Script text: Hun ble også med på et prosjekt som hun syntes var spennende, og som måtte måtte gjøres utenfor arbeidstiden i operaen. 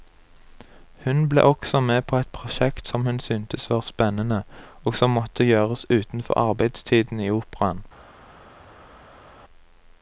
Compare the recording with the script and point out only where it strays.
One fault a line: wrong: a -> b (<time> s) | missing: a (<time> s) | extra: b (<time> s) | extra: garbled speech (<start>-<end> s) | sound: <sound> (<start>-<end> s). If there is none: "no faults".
missing: måtte (5.4 s)